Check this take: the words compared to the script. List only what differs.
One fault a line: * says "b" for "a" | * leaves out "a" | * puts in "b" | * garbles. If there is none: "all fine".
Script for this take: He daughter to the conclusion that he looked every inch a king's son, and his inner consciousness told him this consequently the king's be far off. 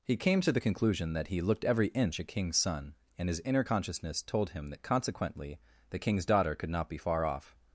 * says "came" for "daughter"
* says "that" for "this"
* puts in "daughter could not"